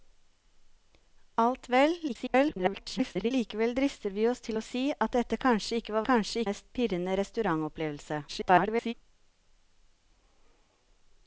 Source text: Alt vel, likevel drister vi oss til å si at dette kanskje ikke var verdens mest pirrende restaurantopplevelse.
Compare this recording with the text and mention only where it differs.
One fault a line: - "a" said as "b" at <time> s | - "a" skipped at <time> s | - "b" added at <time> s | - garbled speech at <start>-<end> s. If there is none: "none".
- garbled speech at 2.1-3.3 s
- "verdens" said as "kanskje" at 6.1 s
- garbled speech at 8.3-8.9 s